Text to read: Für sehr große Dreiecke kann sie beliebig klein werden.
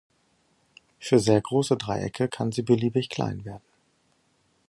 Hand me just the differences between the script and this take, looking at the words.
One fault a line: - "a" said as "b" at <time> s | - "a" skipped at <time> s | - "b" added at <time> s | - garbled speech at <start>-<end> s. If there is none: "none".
none